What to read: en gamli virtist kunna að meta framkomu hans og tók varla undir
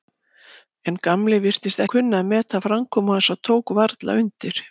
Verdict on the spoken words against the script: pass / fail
pass